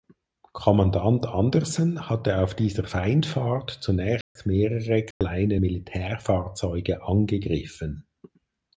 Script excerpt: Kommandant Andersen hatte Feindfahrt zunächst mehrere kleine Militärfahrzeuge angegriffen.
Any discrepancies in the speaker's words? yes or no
yes